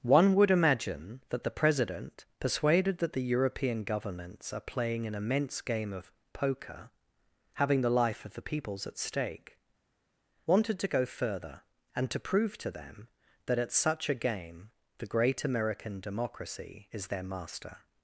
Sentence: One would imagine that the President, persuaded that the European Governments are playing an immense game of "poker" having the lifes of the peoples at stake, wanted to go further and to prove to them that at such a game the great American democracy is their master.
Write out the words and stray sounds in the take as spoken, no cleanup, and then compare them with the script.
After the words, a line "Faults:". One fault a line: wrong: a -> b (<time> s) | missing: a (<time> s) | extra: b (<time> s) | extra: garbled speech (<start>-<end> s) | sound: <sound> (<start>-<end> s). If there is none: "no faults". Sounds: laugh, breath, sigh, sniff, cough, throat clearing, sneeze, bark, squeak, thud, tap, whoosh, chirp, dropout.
One would imagine that the President, persuaded that the European Governments are playing an immense game of "poker" having the life of the peoples at stake, wanted to go further and to prove to them that at such a game the great American democracy is their master.
Faults:
wrong: lifes -> life (7.9 s)